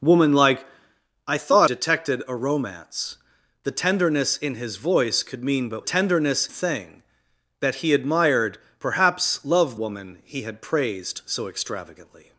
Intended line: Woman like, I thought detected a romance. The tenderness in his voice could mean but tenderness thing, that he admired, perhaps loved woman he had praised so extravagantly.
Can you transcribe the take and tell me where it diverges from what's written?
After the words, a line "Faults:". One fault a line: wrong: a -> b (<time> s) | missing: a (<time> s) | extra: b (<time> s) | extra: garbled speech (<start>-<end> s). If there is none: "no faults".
Woman like, I thought detected a romance. The tenderness in his voice could mean but tenderness thing, that he admired, perhaps loved woman he had praised so extravagantly.
Faults:
no faults